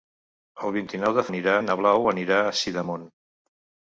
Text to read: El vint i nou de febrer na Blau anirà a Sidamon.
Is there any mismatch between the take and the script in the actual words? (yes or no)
yes